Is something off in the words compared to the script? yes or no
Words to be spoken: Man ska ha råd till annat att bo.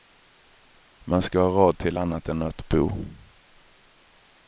yes